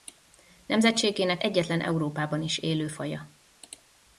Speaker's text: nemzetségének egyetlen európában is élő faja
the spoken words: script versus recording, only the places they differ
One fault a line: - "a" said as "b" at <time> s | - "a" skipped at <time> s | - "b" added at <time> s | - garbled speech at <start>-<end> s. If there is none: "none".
none